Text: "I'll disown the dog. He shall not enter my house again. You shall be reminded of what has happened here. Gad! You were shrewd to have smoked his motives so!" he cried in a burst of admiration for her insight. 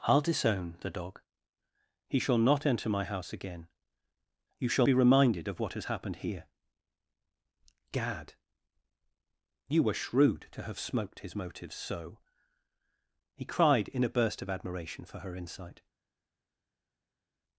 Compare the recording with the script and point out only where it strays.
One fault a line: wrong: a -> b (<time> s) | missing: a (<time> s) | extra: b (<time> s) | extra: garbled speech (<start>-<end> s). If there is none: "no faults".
no faults